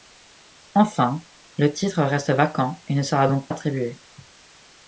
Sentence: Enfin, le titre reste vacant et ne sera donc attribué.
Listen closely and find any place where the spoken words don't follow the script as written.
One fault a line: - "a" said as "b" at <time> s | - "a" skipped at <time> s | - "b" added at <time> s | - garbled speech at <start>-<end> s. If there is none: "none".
none